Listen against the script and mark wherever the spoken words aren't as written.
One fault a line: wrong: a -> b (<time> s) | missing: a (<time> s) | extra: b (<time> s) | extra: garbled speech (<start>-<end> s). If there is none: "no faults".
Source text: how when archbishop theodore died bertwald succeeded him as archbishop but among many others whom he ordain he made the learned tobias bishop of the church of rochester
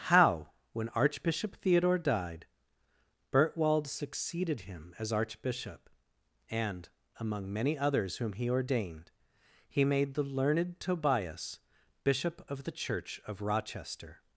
wrong: but -> and (6.5 s)
wrong: ordain -> ordained (8.5 s)